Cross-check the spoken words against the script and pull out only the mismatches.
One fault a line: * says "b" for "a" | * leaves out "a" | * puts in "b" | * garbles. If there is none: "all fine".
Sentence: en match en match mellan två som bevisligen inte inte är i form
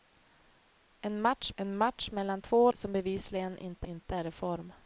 all fine